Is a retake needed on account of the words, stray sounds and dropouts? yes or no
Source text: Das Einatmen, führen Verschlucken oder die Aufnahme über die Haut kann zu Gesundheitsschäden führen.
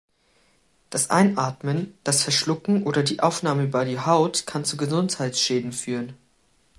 yes